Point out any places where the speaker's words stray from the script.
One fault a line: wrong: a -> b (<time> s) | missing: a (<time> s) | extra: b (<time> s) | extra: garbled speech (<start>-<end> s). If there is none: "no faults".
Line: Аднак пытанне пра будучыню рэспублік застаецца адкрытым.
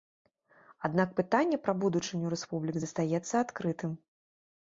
no faults